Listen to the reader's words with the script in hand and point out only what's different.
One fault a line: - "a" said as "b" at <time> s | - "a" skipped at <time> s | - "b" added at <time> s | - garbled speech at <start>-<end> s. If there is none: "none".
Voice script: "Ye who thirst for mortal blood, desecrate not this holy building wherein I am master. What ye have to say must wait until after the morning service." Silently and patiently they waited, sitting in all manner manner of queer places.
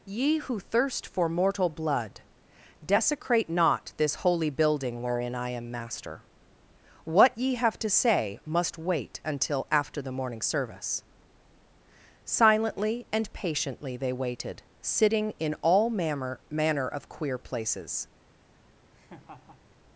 none